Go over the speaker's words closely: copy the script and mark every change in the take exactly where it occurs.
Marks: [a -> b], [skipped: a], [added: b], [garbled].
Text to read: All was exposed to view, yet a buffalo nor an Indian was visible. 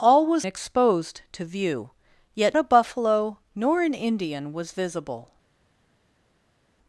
All was exposed to view, yet a buffalo nor an Indian was visible.